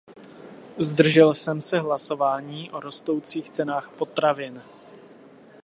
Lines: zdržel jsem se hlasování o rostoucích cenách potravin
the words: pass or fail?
pass